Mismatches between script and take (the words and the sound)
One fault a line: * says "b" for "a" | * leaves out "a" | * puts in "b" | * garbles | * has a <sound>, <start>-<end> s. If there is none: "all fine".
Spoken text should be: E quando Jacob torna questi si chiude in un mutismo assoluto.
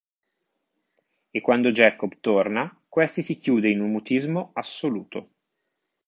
all fine